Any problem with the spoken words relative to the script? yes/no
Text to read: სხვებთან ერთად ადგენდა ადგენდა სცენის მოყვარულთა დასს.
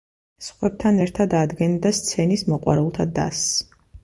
yes